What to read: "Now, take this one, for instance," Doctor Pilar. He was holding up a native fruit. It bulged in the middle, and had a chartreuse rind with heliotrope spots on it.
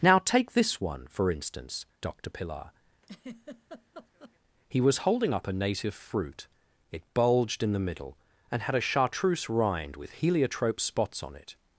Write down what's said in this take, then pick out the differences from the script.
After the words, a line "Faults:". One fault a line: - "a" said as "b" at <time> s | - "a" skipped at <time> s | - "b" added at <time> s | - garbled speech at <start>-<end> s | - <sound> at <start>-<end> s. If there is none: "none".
"Now, take this one, for instance," Doctor Pilar. He was holding up a native fruit. It bulged in the middle, and had a chartreuse rind with heliotrope spots on it.
Faults:
- laugh at 3.0-4.4 s